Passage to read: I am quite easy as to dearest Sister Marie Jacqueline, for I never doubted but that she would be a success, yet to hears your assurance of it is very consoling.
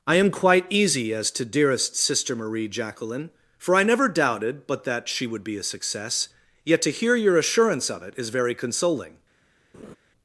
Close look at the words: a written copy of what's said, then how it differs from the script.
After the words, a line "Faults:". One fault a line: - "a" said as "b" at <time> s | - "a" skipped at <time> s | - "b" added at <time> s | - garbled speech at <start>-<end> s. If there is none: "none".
I am quite easy as to dearest Sister Marie Jacqueline, for I never doubted but that she would be a success, yet to hear your assurance of it is very consoling.
Faults:
- "hears" said as "hear" at 6.9 s